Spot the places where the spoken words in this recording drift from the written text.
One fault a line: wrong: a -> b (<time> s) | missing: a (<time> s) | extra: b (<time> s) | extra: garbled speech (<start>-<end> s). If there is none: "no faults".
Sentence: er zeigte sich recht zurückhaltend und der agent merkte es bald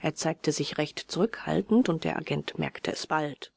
no faults